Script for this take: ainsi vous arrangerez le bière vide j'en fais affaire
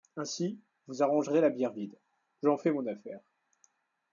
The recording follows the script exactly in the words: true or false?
false